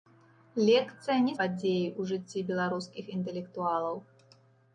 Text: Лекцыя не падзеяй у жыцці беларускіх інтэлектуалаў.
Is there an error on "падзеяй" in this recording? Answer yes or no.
no